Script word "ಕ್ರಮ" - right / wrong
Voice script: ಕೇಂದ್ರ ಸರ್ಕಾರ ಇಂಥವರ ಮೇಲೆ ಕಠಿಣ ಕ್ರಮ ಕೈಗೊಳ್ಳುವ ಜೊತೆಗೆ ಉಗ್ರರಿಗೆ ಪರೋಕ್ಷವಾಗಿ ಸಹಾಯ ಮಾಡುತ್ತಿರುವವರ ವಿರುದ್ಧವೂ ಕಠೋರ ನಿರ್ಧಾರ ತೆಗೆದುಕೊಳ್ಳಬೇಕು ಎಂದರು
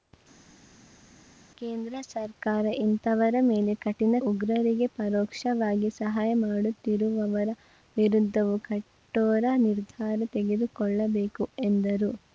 wrong